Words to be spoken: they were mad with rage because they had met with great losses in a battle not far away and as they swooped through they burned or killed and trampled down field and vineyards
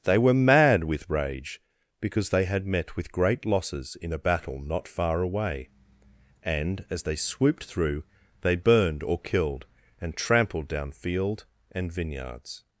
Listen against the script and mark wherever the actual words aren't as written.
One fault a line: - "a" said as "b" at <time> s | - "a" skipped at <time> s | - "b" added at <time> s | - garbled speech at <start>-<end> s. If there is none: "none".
none